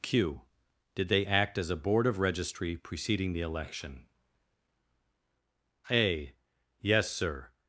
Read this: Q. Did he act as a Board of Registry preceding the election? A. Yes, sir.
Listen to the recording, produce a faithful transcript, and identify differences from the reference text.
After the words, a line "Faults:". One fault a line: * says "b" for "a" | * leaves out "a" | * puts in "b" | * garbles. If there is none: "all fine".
Q. Did they act as a Board of Registry preceding the election? A. Yes, sir.
Faults:
* says "they" for "he"